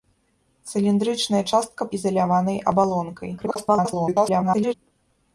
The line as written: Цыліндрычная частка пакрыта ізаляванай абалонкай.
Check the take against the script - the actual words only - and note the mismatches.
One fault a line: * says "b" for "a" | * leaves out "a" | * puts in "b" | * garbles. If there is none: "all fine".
* leaves out "пакрыта"
* garbles